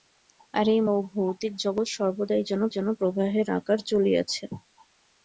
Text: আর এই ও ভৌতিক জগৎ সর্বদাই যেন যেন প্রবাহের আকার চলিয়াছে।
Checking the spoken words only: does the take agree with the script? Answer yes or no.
yes